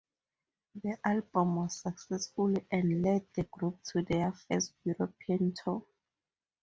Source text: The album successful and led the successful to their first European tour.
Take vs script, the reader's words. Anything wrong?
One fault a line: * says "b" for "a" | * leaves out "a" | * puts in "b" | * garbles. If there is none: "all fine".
* puts in "was"
* says "group" for "successful"